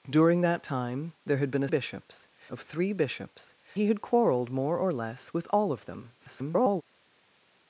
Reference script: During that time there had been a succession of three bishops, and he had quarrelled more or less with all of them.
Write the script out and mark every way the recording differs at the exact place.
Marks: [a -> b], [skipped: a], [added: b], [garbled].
During that time there had been a [succession -> bishops] of three bishops, [skipped: and] he had quarrelled more or less with all of them. [garbled]